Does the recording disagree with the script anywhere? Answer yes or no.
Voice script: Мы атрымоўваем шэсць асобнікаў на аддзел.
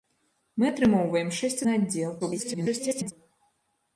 yes